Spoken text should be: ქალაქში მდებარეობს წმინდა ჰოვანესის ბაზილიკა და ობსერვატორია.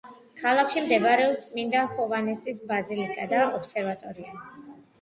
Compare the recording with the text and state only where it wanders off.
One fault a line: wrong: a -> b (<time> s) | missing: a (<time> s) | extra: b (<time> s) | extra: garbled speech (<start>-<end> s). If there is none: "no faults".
no faults